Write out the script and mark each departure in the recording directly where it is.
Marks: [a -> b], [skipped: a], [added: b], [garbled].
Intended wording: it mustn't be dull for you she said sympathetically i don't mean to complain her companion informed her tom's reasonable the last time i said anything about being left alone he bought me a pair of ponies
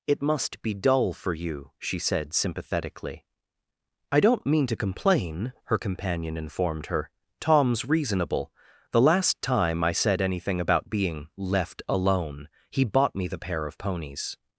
it [mustn't -> must] be dull for you she said sympathetically i don't mean to complain her companion informed her tom's reasonable the last time i said anything about being left alone he bought me [a -> the] pair of ponies